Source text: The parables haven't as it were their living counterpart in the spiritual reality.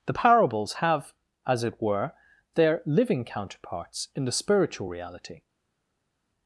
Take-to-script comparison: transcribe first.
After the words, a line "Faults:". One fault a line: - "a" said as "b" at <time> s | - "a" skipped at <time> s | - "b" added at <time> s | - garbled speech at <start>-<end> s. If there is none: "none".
The parables have as it were their living counterparts in the spiritual reality.
Faults:
- "haven't" said as "have" at 0.8 s
- "counterpart" said as "counterparts" at 3.2 s